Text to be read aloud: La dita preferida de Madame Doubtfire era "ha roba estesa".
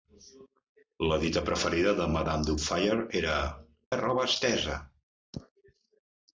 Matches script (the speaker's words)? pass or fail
pass